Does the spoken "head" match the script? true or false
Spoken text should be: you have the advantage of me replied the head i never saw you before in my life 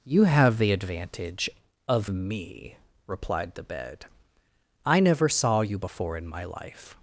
false